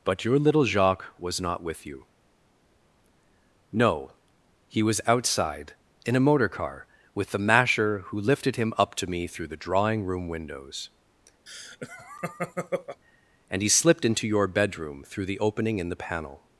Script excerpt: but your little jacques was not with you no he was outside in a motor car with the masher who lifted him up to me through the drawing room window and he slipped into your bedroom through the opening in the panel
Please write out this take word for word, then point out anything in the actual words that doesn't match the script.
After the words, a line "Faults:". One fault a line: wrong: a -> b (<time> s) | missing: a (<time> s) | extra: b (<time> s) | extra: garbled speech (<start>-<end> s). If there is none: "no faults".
but your little jacques was not with you no he was outside in a motor car with the masher who lifted him up to me through the drawing room windows and he slipped into your bedroom through the opening in the panel
Faults:
wrong: window -> windows (10.3 s)